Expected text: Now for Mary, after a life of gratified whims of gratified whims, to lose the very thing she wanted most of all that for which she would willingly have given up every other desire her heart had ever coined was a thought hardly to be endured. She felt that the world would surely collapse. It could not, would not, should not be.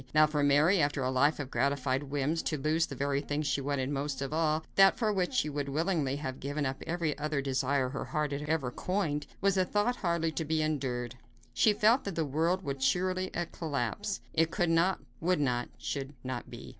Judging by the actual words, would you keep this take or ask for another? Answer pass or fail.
fail